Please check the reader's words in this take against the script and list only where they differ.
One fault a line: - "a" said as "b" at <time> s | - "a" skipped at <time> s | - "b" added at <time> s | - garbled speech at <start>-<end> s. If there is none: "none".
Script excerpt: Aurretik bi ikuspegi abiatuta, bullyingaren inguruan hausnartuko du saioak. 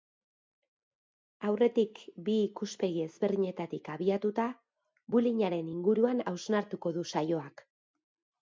- "ezberdinetatik" added at 3.1 s